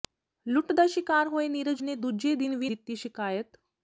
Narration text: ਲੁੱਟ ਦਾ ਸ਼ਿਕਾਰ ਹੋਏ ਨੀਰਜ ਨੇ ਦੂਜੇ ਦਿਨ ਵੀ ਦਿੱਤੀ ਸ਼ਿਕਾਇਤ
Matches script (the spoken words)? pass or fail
pass